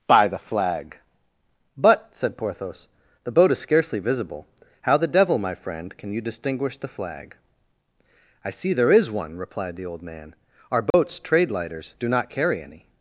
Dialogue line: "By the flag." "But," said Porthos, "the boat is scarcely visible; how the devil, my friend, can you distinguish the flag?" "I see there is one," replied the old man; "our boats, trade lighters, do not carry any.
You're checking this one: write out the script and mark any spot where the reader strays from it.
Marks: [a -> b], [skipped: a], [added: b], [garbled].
"By the flag." "But," said Porthos, "the boat is scarcely visible; how the devil, my friend, can you distinguish the flag?" "I see there is one," replied the old man; "our boats, trade lighters, do not carry any.